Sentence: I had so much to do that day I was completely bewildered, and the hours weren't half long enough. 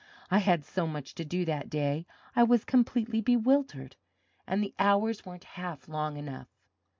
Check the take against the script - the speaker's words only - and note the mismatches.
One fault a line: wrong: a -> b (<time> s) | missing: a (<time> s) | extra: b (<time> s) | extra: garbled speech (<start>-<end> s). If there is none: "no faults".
no faults